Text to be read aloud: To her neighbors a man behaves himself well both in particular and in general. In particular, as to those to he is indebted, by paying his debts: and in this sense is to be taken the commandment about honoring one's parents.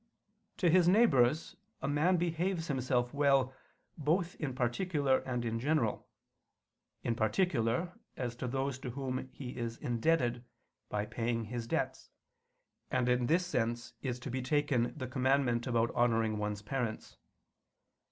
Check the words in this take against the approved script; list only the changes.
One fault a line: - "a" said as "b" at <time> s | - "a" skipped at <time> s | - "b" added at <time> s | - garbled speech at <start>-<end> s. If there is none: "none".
- "her" said as "his" at 0.7 s
- "whom" added at 8.9 s